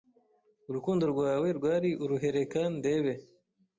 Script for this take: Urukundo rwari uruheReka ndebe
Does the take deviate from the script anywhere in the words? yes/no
yes